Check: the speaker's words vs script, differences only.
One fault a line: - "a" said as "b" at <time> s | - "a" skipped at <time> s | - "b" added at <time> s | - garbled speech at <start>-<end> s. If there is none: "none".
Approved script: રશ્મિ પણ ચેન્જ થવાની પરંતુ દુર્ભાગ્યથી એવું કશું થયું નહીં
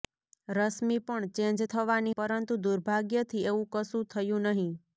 none